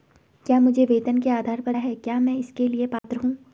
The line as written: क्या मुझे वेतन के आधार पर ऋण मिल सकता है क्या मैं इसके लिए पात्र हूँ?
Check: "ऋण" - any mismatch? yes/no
yes